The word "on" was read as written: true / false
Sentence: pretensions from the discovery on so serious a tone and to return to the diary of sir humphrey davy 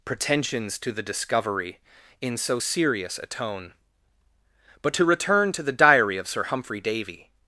false